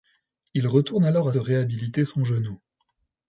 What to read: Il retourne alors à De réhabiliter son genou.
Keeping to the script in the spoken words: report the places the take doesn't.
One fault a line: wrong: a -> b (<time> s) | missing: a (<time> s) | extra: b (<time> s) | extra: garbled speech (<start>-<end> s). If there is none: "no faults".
no faults